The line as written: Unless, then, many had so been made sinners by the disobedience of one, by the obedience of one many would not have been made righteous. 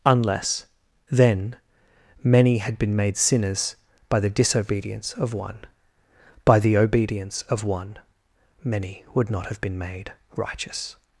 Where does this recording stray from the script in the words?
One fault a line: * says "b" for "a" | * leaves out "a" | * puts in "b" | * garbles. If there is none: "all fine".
* leaves out "so"